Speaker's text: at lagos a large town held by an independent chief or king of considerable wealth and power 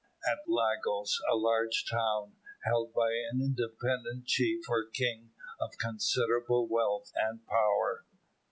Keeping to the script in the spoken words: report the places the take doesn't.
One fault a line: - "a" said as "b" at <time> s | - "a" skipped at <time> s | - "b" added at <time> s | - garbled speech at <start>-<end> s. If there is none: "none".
none